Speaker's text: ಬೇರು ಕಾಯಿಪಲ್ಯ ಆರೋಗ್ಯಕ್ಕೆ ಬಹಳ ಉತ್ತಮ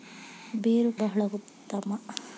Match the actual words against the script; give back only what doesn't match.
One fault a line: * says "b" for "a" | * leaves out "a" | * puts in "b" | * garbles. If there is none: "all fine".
* leaves out "ಕಾಯಿಪಲ್ಯ ಆರೋಗ್ಯಕ್ಕೆ"